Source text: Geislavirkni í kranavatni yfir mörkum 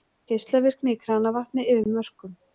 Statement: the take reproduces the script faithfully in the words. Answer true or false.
true